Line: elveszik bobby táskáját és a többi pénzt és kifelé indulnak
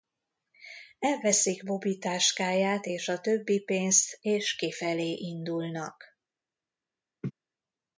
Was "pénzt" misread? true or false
false